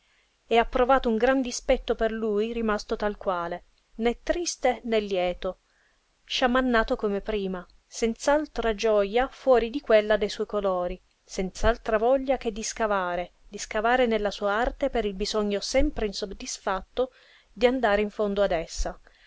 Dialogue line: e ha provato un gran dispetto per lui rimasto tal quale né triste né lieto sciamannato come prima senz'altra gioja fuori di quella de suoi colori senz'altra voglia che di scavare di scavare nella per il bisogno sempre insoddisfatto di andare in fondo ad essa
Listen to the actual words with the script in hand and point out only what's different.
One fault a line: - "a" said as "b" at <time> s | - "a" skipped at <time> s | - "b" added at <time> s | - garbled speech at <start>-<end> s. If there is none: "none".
- "sua arte" added at 14.3 s